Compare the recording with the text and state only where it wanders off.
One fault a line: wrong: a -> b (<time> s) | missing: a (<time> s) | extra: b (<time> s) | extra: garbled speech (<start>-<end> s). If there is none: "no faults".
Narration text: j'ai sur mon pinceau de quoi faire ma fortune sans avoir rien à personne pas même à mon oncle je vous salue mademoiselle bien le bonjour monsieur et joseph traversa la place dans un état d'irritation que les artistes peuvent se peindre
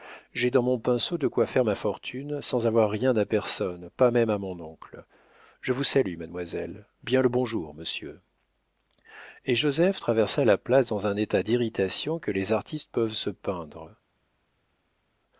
wrong: sur -> dans (0.5 s)